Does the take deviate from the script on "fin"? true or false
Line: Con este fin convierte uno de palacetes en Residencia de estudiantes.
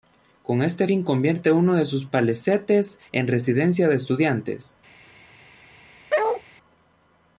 false